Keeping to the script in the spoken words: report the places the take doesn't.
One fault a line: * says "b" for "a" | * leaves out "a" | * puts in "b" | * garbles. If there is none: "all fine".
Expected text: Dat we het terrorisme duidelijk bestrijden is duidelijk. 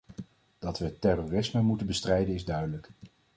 * says "moeten" for "duidelijk"